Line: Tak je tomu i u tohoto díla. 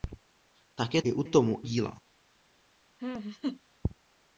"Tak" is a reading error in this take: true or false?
false